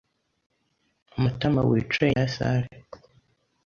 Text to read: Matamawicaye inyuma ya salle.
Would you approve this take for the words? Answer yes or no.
no